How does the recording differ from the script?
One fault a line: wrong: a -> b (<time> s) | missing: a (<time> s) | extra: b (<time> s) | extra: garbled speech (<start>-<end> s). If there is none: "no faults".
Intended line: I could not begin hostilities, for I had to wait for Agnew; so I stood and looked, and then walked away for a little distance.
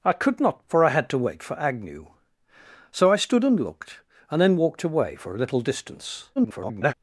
missing: begin hostilities (0.6 s)
extra: garbled speech (6.4-6.9 s)